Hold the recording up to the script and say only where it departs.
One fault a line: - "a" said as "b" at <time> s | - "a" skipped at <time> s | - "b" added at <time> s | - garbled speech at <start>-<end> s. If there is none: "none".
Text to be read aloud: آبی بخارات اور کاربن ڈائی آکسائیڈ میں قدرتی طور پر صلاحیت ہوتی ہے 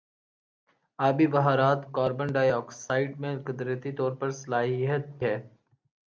- "اور" skipped at 1.9 s
- "ہوتی" skipped at 5.0 s